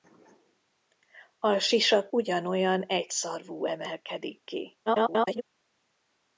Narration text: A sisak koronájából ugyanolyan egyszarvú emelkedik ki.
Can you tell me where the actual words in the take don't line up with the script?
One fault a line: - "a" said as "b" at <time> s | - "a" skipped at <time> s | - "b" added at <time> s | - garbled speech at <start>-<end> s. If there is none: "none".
- "koronájából" skipped at 2.1 s
- garbled speech at 4.9-5.4 s